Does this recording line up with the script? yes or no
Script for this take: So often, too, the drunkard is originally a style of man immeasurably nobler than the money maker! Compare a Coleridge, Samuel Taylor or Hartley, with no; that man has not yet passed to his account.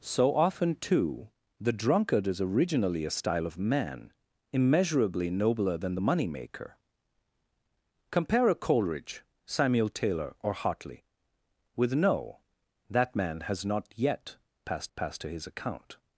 no